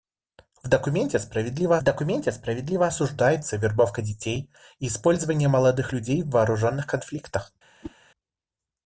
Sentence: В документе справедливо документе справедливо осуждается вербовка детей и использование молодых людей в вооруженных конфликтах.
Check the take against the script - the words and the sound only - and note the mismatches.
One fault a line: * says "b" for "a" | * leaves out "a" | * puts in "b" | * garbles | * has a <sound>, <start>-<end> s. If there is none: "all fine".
* has a whoosh, 7.8-8.0 s